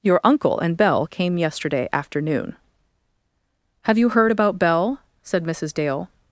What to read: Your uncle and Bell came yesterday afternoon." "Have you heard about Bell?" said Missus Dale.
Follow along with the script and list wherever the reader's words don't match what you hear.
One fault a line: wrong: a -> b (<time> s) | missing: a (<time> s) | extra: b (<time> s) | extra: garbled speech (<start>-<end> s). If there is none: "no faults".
no faults